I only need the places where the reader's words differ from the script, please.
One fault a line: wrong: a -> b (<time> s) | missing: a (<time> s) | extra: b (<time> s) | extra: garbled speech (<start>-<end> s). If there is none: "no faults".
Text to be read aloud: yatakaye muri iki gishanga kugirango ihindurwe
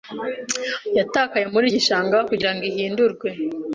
missing: iki (1.6 s)